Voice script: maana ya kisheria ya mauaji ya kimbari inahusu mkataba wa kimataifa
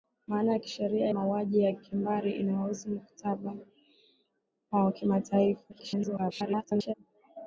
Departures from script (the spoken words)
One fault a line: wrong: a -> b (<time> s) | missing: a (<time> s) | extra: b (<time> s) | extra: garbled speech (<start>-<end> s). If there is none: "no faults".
missing: ya (1.1 s)
extra: garbled speech (5.7-6.9 s)